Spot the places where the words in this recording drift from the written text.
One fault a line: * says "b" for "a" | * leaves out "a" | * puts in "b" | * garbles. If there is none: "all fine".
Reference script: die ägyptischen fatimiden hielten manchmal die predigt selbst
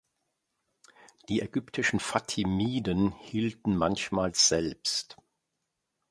* leaves out "die predigt"